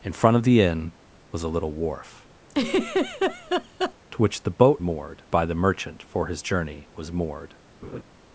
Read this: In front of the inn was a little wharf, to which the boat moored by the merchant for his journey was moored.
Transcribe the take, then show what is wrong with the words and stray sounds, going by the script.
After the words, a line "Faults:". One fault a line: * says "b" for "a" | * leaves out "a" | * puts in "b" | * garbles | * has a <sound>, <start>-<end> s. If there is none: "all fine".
In front of the inn was a little wharf, to which the boat moored by the merchant for his journey was moored.
Faults:
* has a laugh, 2.5-3.9 s
* has a laugh, 7.8-8.0 s